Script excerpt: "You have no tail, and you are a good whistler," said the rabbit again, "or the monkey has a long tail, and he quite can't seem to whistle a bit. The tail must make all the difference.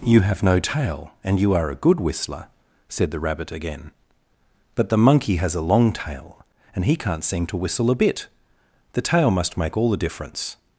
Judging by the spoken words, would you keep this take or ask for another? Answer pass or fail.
fail